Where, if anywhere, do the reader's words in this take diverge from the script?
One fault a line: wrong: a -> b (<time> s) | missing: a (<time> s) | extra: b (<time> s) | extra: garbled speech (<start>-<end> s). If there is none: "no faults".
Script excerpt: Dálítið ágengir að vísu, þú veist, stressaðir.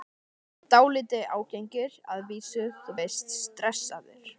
no faults